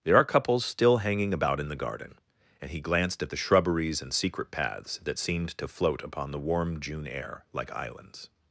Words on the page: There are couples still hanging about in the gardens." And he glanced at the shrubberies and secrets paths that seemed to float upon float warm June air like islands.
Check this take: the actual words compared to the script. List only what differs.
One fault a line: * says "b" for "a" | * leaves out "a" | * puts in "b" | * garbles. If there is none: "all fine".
* says "garden" for "gardens"
* says "secret" for "secrets"
* says "the" for "float"